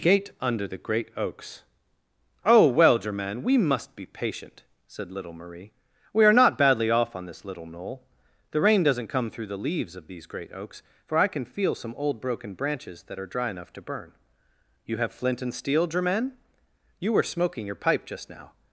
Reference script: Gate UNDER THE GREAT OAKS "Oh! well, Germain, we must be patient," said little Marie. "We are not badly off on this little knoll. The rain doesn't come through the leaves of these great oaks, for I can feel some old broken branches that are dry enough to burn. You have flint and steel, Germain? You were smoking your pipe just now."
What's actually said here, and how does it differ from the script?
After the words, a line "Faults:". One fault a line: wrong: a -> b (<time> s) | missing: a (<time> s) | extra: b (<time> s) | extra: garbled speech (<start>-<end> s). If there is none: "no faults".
Gate UNDER THE GREAT OAKS "Oh! well, Germain, we must be patient," said little Marie. "We are not badly off on this little knoll. The rain doesn't come through the leaves of these great oaks, for I can feel some old broken branches that are dry enough to burn. You have flint and steel, Germain? You were smoking your pipe just now."
Faults:
no faults